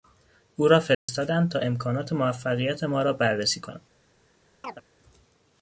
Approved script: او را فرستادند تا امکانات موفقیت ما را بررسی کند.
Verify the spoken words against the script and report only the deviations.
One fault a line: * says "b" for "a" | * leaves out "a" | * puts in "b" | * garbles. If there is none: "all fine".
all fine